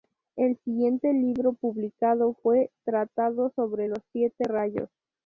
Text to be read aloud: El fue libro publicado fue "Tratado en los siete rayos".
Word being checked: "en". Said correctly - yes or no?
no